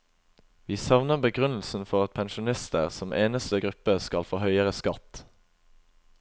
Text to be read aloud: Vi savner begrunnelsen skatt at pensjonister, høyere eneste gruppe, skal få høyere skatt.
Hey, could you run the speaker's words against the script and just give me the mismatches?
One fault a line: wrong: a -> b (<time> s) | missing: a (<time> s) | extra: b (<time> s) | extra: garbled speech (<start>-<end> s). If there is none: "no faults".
wrong: skatt -> for (1.9 s)
wrong: høyere -> som (2.9 s)